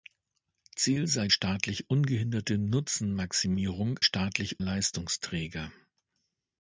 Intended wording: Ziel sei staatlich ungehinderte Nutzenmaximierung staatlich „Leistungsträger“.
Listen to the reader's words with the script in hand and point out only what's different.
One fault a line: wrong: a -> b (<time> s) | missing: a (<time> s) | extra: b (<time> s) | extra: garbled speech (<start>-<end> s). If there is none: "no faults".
no faults